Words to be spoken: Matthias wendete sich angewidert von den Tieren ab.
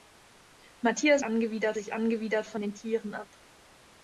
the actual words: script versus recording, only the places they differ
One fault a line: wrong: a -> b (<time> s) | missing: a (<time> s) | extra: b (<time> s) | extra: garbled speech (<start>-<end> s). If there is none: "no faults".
wrong: wendete -> angewidert (1.2 s)